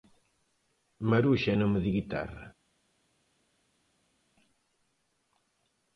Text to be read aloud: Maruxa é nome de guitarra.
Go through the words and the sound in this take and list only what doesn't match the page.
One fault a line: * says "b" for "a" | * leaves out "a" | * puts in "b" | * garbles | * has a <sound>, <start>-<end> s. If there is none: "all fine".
all fine